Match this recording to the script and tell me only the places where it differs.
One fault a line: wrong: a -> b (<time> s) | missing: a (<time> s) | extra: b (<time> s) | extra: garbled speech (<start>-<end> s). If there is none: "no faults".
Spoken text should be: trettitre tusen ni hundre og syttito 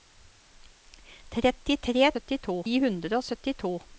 wrong: tusen -> syttito (2.1 s)